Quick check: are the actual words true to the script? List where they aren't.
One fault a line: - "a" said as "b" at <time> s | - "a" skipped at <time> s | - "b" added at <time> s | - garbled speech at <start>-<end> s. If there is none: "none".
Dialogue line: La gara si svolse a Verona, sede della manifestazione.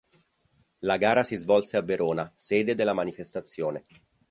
none